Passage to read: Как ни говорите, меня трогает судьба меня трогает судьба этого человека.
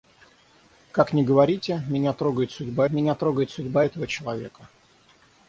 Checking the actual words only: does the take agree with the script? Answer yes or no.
yes